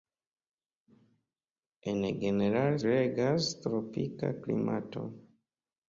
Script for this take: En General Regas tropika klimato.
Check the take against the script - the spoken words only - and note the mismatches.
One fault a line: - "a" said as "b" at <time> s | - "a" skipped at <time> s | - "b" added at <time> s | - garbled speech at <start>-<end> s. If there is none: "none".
none